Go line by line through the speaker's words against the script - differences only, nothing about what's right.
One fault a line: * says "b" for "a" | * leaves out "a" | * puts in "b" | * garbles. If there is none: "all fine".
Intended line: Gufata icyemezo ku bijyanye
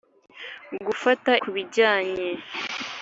* leaves out "icyemezo"